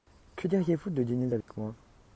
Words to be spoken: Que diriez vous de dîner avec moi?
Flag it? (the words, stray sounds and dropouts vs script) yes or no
yes